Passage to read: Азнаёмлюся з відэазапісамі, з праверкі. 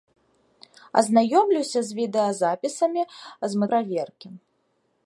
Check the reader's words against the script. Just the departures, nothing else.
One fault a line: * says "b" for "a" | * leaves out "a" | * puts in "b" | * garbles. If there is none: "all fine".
all fine